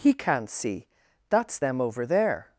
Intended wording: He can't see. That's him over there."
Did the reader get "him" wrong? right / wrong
wrong